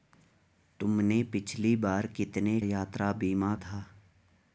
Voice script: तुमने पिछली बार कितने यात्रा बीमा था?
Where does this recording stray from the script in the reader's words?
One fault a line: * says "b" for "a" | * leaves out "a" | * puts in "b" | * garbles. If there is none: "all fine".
all fine